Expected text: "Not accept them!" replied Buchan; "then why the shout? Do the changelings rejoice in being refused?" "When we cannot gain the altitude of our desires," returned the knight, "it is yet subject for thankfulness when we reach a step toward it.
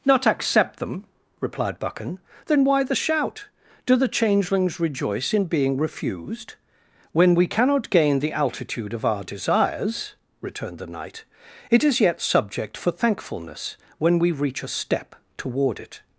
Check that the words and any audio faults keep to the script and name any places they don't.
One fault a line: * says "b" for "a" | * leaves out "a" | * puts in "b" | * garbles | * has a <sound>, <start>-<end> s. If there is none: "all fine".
all fine